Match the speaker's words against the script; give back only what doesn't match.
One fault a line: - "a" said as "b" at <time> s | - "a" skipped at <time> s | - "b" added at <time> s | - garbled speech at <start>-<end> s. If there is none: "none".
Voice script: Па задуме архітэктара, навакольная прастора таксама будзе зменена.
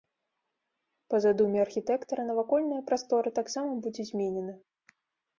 none